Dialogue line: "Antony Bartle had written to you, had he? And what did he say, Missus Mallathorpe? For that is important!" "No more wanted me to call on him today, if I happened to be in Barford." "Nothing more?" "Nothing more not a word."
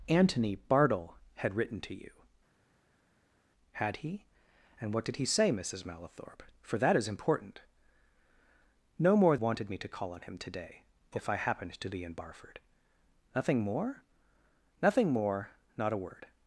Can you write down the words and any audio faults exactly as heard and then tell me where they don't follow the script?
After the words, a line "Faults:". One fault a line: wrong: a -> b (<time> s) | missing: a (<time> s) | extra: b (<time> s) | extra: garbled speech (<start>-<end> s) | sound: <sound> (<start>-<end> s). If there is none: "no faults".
"Antony Bartle had written to you, had he? And what did he say, Missus Mallathorpe? For that is important!" "No more wanted me to call on him today, if I happened to be in Barford." "Nothing more?" "Nothing more not a word."
Faults:
no faults